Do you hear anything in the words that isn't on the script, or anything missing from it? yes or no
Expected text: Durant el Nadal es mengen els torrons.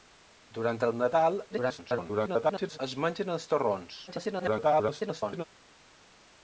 yes